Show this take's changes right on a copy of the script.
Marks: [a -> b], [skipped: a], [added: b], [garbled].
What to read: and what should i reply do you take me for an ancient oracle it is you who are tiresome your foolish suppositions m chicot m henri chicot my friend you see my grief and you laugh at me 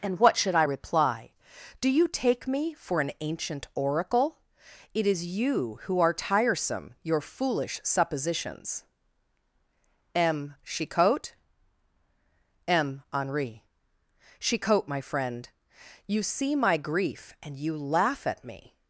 and what should i reply do you take me for an ancient oracle it is you who are tiresome your foolish suppositions m chicot m henri chicot my friend you see my grief and you laugh at me